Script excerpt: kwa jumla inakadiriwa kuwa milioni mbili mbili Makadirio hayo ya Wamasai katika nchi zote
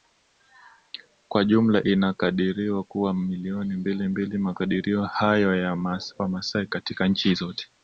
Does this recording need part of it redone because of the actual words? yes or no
no